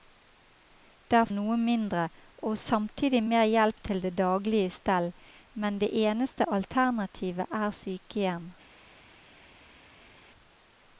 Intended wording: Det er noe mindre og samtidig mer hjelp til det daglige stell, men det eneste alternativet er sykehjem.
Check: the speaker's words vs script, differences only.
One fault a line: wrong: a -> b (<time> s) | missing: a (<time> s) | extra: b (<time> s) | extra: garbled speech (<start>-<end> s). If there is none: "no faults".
no faults